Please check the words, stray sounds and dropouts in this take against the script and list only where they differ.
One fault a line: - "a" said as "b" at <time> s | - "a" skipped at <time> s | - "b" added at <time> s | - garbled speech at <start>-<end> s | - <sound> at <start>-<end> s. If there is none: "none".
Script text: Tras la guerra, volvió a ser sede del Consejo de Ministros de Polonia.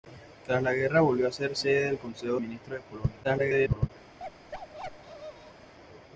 - "de" skipped at 2.4 s
- garbled speech at 3.2-3.9 s
- bark at 4.2-5.7 s